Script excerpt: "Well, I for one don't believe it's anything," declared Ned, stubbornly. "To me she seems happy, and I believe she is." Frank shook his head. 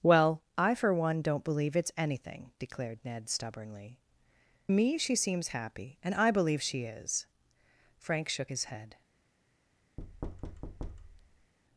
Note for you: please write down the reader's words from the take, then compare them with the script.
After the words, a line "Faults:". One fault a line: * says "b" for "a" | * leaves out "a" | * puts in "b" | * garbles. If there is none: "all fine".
"Well, I for one don't believe it's anything," declared Ned, stubbornly. "Me she seems happy, and I believe she is." Frank shook his head.
Faults:
* leaves out "To"